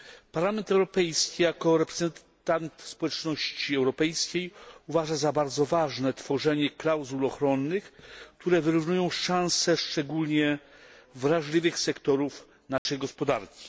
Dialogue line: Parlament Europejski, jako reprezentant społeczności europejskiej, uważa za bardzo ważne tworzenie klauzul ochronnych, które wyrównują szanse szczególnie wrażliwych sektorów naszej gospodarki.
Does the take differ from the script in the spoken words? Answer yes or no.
no